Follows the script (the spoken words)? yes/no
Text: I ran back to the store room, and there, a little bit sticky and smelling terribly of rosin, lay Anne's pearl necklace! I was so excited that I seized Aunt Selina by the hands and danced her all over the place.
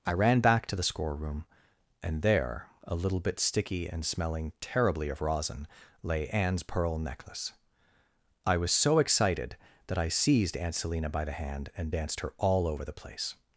no